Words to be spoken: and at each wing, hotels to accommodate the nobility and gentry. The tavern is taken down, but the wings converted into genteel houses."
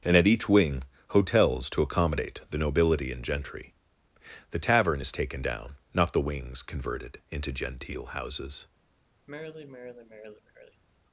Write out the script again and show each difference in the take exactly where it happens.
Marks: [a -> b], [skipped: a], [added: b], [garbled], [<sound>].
and at each wing, hotels to accommodate the nobility and gentry. The tavern is taken down, [but -> not] the wings converted into genteel houses." [sigh]